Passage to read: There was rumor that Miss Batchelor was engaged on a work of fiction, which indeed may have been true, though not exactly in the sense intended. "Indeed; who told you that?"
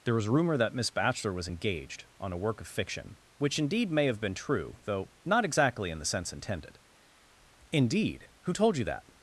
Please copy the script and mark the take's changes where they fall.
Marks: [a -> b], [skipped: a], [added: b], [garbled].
There was rumor that Miss Batchelor was engaged on a work of fiction, which indeed may have been true, though not exactly in the sense intended. "Indeed; who told you that?"